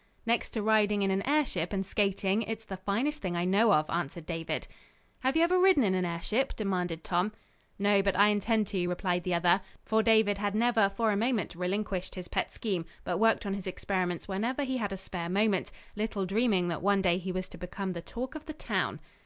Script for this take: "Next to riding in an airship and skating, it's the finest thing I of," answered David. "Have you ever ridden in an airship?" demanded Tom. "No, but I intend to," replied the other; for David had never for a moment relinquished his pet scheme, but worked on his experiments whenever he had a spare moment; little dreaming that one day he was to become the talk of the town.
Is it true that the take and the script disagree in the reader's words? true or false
true